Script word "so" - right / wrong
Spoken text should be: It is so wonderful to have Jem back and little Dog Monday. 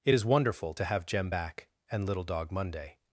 wrong